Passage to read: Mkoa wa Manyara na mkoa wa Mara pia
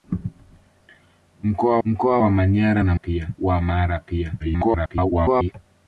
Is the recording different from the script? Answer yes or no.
yes